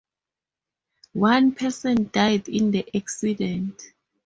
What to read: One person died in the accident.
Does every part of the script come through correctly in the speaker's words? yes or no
yes